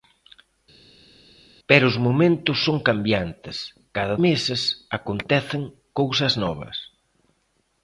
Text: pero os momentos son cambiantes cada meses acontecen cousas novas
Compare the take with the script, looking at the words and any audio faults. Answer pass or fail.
pass